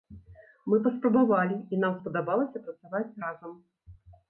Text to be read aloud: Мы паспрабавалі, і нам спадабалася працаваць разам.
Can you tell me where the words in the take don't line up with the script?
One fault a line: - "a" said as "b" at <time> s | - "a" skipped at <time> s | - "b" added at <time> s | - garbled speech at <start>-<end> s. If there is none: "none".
none